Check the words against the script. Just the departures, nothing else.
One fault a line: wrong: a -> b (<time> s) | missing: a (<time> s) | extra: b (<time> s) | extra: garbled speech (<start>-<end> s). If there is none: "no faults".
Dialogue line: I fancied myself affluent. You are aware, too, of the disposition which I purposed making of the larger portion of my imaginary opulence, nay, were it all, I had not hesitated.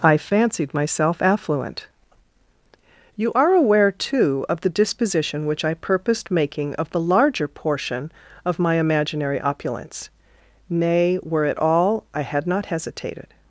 no faults